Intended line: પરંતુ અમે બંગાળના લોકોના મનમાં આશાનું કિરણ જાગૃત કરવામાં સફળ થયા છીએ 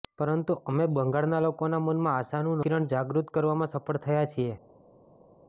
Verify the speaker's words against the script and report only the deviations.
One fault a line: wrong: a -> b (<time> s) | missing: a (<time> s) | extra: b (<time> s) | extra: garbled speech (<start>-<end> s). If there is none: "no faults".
no faults